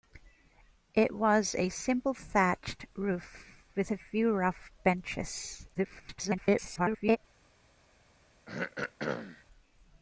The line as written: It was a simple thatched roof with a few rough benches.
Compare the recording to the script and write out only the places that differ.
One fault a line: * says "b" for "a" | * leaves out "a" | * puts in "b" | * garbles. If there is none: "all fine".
* garbles